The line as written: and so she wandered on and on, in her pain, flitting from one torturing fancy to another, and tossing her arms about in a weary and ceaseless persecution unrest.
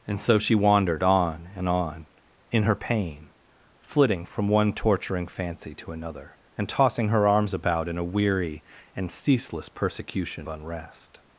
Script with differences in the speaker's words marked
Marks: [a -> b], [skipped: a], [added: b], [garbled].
and so she wandered on and on, in her pain, flitting from one torturing fancy to another, and tossing her arms about in a weary and ceaseless persecution unrest.